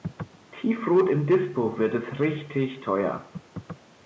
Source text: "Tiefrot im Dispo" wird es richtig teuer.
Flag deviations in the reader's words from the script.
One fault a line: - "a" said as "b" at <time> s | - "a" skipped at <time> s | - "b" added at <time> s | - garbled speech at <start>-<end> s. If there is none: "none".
none